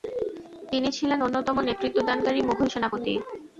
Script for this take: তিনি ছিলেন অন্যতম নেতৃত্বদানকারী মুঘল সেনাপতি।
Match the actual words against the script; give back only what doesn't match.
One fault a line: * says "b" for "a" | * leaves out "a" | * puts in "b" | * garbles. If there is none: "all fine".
all fine